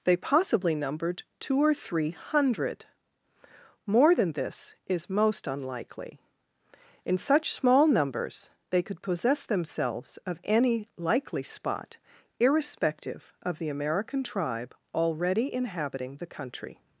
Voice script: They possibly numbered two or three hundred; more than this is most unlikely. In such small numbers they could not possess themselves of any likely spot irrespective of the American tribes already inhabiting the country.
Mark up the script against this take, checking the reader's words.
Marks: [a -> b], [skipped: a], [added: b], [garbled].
They possibly numbered two or three hundred; more than this is most unlikely. In such small numbers they could [skipped: not] possess themselves of any likely spot irrespective of the American [tribes -> tribe] already inhabiting the country.